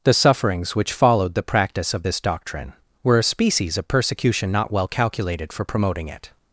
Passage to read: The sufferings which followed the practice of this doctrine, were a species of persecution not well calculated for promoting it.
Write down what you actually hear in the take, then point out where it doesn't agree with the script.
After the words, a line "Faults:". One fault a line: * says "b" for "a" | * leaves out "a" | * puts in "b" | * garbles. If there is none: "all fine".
The sufferings which followed the practice of this doctrine, were a species of persecution not well calculated for promoting it.
Faults:
all fine